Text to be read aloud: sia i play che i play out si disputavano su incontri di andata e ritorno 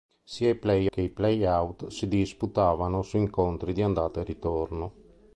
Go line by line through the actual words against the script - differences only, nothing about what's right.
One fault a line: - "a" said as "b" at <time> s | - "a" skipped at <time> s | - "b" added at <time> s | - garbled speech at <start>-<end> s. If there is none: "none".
none